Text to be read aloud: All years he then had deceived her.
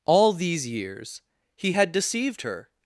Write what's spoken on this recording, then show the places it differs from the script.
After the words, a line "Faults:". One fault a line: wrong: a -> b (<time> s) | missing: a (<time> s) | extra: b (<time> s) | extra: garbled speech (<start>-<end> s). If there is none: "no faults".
All these years he had deceived her.
Faults:
extra: these (0.3 s)
missing: then (1.7 s)